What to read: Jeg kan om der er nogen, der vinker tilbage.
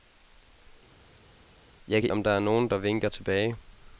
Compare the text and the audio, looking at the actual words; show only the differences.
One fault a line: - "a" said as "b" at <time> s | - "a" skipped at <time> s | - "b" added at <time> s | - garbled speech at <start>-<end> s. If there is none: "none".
none